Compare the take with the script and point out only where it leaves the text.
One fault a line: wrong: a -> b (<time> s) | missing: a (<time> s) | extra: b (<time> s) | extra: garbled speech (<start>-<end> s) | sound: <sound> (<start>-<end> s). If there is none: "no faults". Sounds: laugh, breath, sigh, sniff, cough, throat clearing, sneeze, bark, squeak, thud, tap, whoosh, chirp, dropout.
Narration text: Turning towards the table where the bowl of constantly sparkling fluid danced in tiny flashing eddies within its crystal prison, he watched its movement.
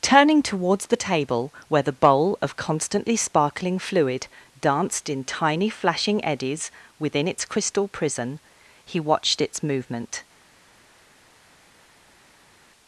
no faults